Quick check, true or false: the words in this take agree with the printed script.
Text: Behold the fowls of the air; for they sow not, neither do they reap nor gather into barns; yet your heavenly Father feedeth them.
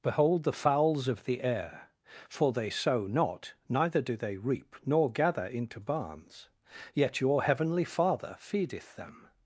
true